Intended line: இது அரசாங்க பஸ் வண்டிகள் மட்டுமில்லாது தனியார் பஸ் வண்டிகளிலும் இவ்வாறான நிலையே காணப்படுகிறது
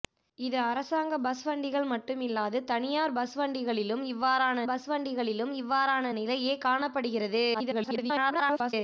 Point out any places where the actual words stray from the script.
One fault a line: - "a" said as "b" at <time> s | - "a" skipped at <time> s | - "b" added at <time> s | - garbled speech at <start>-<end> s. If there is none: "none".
- "பஸ் வண்டிகளிலும் இவ்வாறான" added at 4.7 s
- garbled speech at 7.5-8.7 s